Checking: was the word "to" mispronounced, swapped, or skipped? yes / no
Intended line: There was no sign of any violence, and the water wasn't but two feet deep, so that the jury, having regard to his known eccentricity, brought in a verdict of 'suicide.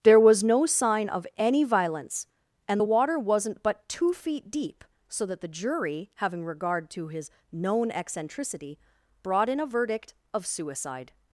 no